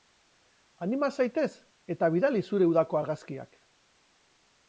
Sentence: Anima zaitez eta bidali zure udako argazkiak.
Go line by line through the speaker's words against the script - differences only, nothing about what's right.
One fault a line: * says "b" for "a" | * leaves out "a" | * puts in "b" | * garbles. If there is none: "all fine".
all fine